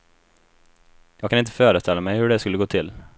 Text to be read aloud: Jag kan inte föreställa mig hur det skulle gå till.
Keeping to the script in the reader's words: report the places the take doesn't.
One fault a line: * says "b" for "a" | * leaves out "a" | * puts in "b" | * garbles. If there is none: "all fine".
all fine